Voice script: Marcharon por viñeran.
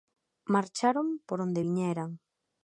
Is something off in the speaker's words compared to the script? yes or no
yes